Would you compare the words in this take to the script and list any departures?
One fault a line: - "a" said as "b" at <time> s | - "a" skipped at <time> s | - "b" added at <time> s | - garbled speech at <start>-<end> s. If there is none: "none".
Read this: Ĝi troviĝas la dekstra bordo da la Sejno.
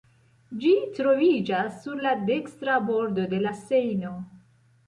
- "sur" added at 1.8 s
- "da" said as "de" at 3.4 s